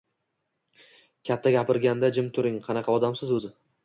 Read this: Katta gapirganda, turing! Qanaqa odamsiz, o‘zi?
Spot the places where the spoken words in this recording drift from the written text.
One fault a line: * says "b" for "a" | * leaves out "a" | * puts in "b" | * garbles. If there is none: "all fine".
* puts in "jim"